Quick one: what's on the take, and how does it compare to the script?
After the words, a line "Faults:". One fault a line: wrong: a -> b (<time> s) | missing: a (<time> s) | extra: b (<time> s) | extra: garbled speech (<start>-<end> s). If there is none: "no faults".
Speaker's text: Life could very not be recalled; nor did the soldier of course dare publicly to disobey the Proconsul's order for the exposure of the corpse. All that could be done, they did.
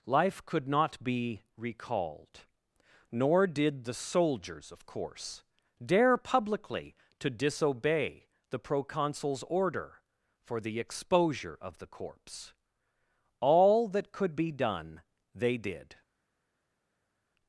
Life could not be recalled; nor did the soldiers of course dare publicly to disobey the Proconsul's order for the exposure of the corpse. All that could be done, they did.
Faults:
missing: very (0.7 s)
wrong: soldier -> soldiers (3.9 s)